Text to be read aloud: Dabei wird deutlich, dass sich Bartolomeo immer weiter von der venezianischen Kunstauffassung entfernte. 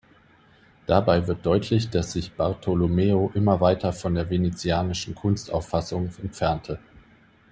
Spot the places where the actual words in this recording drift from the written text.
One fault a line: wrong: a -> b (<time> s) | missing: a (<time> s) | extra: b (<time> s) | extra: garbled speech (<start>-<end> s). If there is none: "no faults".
no faults